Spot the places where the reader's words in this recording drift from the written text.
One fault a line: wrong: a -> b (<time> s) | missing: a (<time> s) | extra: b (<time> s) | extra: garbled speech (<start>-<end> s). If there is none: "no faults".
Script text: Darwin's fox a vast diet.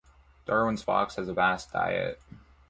extra: has (1.2 s)